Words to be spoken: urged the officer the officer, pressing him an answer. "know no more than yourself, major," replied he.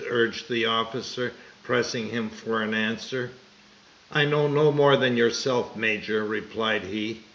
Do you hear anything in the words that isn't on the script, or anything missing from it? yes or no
yes